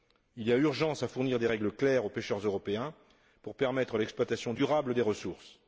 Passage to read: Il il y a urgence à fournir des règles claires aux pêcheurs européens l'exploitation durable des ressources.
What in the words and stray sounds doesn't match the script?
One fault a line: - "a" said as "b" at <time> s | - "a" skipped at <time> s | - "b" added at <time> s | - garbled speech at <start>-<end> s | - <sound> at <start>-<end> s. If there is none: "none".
- "il" skipped at 0.5 s
- "pour permettre" added at 3.4 s